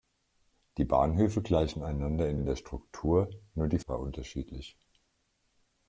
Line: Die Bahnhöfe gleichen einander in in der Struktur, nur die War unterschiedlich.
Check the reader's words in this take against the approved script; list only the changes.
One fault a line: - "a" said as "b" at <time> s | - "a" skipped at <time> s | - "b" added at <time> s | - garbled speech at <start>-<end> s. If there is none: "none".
none